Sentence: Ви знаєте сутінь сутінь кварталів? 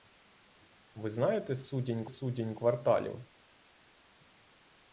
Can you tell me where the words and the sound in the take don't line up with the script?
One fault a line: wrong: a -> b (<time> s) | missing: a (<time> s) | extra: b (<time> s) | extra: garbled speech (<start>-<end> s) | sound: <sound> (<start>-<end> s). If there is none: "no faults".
no faults